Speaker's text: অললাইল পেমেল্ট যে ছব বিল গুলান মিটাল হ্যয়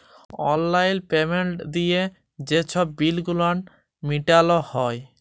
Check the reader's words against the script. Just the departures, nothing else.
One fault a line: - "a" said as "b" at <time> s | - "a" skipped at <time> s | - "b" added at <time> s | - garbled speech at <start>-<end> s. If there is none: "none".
- "দিঁয়ে" added at 1.7 s